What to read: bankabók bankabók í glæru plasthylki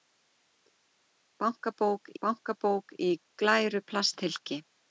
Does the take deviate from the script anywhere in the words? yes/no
no